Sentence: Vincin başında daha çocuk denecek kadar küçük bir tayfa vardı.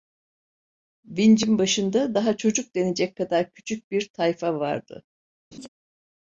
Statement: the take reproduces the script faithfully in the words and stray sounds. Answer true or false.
false